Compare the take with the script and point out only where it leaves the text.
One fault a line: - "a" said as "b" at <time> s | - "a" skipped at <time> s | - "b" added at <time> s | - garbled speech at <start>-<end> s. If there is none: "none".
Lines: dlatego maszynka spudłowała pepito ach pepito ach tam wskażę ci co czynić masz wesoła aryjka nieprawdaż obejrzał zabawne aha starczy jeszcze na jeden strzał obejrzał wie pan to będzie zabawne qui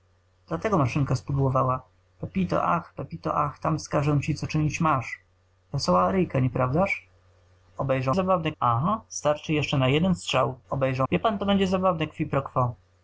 none